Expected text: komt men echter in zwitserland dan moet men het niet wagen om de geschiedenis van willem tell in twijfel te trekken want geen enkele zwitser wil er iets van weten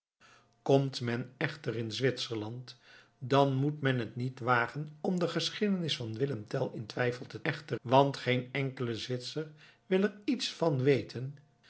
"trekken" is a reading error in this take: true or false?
true